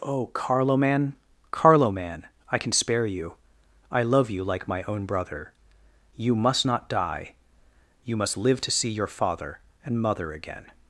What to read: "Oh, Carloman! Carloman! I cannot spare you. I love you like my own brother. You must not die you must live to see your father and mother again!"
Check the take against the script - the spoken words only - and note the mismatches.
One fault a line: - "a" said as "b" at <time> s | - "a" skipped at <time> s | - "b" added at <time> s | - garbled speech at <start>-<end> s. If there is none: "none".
- "cannot" said as "can" at 2.5 s